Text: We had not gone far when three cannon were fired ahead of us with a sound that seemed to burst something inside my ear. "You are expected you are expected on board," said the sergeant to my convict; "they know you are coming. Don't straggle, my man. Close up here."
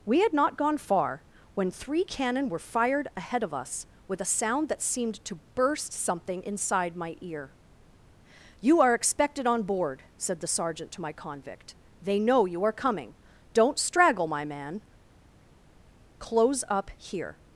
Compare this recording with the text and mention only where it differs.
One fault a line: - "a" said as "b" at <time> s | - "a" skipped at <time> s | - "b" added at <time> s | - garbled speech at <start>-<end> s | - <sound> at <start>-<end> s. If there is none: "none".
- "you are expected" skipped at 9.4 s